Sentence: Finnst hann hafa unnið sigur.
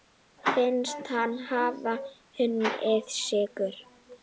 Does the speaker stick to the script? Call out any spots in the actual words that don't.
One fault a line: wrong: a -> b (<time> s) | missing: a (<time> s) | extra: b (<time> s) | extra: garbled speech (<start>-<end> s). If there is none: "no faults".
no faults